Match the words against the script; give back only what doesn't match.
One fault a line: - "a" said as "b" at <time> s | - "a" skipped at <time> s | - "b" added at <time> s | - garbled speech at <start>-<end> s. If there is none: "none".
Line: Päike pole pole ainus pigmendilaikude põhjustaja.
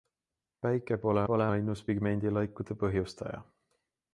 none